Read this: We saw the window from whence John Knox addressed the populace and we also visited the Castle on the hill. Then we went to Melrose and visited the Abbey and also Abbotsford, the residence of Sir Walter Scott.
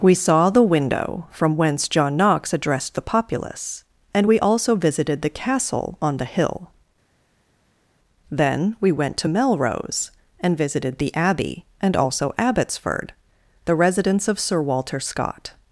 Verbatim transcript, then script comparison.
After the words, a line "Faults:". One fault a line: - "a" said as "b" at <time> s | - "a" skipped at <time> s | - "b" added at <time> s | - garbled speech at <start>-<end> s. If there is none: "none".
We saw the window from whence John Knox addressed the populace and we also visited the Castle on the hill. Then we went to Melrose and visited the Abbey and also Abbotsford, the residence of Sir Walter Scott.
Faults:
none